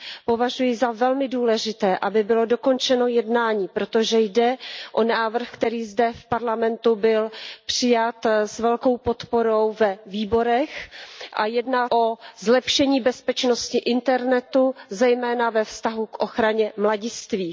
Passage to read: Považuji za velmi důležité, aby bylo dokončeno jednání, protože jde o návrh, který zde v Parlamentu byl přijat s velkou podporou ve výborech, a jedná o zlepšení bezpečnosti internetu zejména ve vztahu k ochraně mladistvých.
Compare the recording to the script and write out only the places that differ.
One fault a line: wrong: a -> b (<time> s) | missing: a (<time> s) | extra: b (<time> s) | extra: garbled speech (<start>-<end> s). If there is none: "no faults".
no faults